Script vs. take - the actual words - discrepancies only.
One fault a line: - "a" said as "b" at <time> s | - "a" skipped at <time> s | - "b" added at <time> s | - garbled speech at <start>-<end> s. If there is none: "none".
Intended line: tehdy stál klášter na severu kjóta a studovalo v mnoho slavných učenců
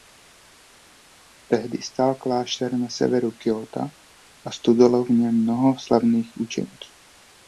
- "něm" added at 5.1 s